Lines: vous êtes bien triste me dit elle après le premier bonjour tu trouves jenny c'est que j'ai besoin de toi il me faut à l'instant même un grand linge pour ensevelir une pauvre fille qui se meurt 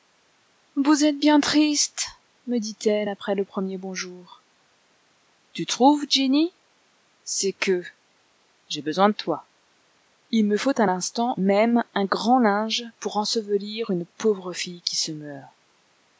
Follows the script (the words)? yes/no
yes